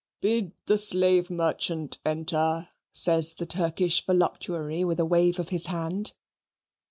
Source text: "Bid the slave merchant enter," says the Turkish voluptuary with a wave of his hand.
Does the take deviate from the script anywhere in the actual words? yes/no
no